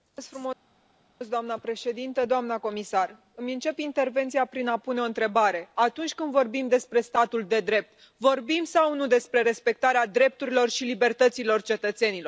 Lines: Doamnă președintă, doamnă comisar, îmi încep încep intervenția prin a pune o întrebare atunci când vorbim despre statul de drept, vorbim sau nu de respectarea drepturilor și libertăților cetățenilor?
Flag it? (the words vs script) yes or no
yes